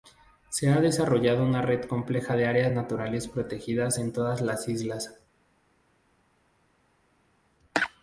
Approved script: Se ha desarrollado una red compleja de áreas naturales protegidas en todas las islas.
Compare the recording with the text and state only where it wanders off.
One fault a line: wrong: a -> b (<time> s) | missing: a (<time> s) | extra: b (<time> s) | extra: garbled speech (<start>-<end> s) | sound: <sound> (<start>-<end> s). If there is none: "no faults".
no faults